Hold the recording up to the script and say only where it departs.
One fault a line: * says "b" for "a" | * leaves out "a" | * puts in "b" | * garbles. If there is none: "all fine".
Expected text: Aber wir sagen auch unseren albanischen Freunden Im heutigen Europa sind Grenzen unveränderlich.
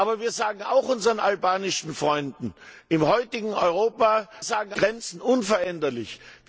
* says "sagen" for "sind"